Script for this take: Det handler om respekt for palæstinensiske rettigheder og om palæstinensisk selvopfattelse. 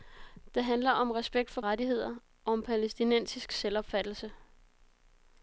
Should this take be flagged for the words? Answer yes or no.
yes